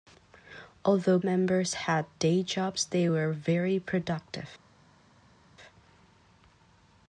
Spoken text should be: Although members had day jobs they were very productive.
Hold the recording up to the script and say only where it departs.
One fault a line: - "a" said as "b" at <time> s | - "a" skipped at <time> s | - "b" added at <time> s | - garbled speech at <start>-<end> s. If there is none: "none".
none